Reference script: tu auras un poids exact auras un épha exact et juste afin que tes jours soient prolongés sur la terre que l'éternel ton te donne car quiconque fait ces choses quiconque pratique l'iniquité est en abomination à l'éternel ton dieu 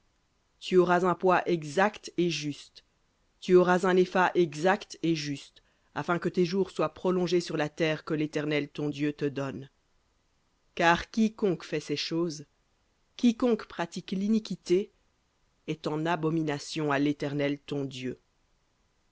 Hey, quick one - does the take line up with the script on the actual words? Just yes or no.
no